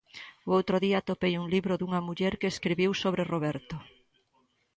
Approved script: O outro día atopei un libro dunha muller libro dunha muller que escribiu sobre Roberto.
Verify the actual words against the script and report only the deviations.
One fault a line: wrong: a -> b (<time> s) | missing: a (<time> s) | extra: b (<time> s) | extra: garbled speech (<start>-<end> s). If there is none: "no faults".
missing: libro dunha muller (2.3 s)